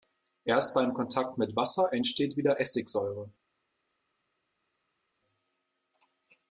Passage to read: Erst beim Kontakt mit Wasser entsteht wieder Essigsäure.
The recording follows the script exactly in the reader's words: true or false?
true